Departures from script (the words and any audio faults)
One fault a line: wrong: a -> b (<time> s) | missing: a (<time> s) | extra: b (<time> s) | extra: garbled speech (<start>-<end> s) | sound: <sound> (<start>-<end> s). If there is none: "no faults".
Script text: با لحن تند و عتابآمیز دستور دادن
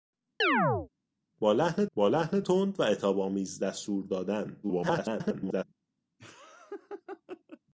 sound: chirp (0.4-0.9 s)
extra: با لحن (1.9 s)
extra: garbled speech (4.6-5.6 s)
sound: laugh (6.2-7.6 s)